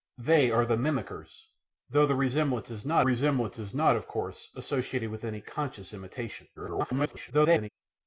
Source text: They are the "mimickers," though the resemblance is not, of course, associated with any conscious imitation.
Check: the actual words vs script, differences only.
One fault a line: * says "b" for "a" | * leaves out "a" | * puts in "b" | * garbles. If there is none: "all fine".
* puts in "resemblance is not"
* garbles